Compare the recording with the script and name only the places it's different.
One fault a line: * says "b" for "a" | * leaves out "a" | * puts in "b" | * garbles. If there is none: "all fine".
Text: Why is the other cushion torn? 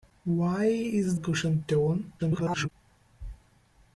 * leaves out "the other"
* garbles